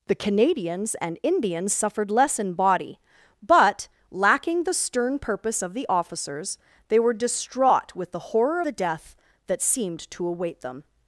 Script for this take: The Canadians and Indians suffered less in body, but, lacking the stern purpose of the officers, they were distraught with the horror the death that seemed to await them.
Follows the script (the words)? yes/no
yes